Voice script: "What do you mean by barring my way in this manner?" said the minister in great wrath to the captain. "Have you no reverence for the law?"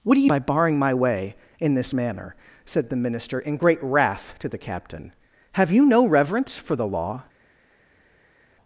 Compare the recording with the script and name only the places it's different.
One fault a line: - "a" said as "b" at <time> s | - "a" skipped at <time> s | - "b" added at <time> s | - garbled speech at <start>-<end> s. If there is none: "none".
- "mean" skipped at 0.3 s